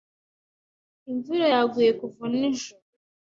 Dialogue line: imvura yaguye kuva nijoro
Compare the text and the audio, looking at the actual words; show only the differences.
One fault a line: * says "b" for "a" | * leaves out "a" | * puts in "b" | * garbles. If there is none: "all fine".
all fine